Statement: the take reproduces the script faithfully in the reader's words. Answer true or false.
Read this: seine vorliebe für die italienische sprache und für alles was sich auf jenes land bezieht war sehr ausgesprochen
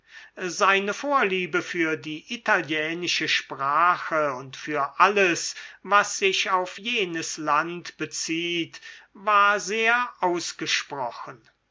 true